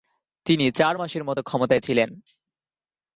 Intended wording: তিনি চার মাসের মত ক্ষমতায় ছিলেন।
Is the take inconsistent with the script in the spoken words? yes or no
no